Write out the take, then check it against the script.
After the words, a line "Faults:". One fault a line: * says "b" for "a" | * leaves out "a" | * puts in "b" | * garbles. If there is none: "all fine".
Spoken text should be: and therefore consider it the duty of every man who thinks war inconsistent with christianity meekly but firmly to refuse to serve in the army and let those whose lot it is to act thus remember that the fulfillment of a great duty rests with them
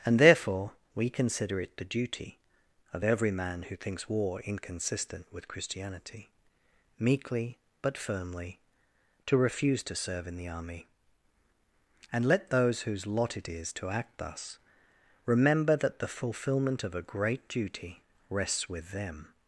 and therefore we consider it the duty of every man who thinks war inconsistent with christianity meekly but firmly to refuse to serve in the army and let those whose lot it is to act thus remember that the fulfillment of a great duty rests with them
Faults:
* puts in "we"